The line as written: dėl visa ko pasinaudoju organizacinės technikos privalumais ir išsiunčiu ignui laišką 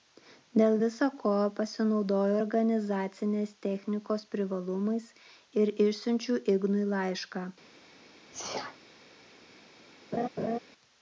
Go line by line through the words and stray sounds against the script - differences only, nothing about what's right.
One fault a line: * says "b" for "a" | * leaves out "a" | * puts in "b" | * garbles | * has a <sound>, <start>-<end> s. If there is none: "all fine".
* has a sneeze, 8.3-8.8 s
* has a laugh, 10.1-10.6 s